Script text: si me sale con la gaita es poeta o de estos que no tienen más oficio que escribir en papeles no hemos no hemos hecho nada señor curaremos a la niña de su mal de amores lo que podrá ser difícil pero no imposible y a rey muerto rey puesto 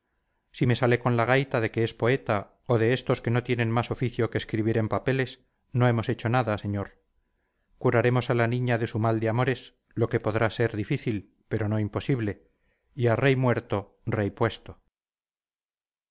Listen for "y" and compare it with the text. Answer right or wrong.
right